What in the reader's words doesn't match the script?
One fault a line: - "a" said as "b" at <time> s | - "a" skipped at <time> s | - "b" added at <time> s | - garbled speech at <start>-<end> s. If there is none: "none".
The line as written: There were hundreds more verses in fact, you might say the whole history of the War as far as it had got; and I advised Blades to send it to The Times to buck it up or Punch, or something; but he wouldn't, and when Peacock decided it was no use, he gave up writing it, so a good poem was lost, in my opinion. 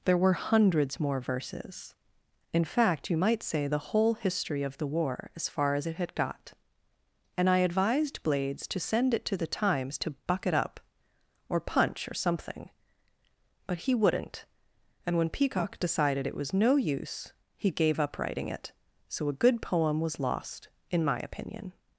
none